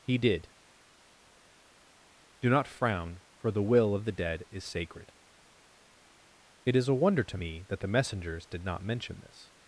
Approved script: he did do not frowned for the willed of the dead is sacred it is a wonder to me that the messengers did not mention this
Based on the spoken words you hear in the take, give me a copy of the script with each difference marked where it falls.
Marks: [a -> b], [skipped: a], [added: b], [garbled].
he did do not [frowned -> frown] for the [willed -> will] of the dead is sacred it is a wonder to me that the messengers did not mention this